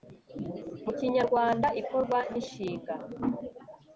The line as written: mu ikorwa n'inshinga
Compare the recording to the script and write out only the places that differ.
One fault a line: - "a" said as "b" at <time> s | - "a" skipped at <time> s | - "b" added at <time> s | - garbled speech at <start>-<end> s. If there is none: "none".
- "kinyarwanda" added at 1.0 s